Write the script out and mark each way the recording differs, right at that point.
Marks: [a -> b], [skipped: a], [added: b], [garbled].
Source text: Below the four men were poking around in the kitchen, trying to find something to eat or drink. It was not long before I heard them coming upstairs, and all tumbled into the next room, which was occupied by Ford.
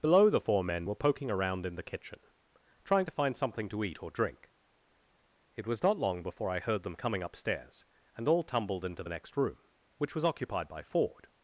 Below the four men were poking around in the kitchen, trying to find something to eat or drink. It was not long before I heard them coming upstairs, and all tumbled into the next room, which was occupied by Ford.